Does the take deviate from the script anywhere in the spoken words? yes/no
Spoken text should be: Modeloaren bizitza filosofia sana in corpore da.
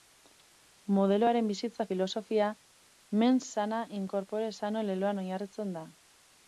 yes